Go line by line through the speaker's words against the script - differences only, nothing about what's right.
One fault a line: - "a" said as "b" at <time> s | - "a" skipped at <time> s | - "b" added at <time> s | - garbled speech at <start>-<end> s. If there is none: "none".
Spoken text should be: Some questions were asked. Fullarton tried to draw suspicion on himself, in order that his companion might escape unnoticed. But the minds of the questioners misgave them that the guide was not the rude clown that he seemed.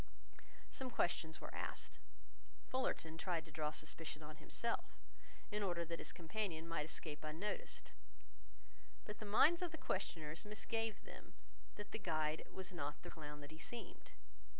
- "rude" skipped at 13.1 s